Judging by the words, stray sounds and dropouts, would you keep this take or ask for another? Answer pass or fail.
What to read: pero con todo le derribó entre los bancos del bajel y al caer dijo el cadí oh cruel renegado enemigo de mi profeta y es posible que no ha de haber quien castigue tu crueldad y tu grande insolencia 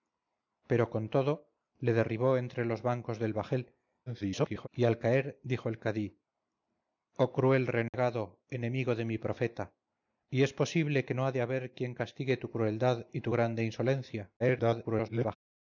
fail